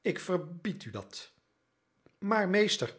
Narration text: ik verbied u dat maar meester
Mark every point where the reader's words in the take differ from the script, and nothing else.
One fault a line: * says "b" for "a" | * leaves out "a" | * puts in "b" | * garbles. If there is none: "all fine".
all fine